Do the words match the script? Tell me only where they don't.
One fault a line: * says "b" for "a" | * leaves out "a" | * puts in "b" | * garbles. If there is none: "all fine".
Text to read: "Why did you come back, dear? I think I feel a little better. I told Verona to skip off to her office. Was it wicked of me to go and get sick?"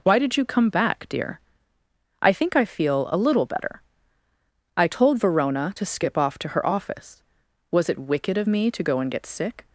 all fine